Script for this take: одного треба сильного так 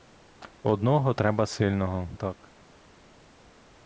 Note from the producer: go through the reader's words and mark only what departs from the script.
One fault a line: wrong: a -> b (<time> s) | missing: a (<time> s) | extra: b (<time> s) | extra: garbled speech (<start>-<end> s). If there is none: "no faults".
no faults